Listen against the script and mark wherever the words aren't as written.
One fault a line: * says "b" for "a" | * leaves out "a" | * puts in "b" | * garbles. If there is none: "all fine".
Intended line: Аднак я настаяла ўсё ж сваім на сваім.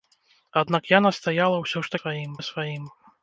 all fine